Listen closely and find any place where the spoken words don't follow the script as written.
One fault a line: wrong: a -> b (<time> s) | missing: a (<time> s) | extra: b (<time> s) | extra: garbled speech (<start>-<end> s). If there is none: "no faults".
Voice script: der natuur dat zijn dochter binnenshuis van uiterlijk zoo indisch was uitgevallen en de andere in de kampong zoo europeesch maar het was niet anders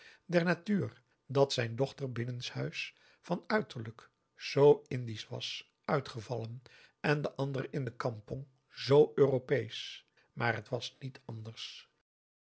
no faults